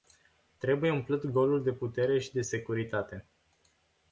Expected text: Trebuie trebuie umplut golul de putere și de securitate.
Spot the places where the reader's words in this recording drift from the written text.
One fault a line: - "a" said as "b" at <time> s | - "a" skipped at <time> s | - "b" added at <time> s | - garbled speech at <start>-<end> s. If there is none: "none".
- "trebuie" skipped at 0.9 s